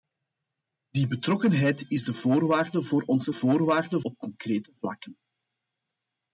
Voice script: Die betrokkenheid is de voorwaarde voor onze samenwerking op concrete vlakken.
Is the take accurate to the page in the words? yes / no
no